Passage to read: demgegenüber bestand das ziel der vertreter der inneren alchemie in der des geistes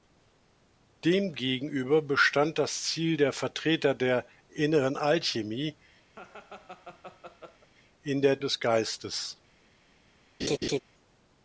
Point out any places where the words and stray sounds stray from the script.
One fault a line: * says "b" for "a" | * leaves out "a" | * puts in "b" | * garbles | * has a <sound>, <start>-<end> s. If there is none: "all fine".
* has a laugh, 6.1-7.7 s
* has a laugh, 10.4-10.8 s